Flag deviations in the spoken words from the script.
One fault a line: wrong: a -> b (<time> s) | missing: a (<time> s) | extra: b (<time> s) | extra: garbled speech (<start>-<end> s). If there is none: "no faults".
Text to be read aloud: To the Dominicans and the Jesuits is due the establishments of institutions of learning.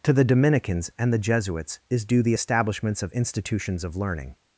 no faults